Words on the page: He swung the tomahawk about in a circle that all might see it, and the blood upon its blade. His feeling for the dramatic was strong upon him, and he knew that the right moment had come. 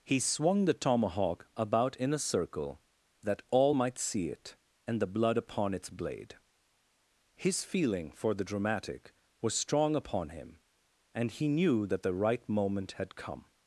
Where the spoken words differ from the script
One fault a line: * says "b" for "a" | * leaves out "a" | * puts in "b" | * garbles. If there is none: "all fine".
all fine